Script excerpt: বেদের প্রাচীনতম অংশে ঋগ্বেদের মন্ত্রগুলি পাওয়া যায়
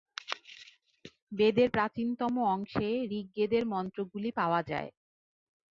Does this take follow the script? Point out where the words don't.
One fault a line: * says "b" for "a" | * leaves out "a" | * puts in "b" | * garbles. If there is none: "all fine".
all fine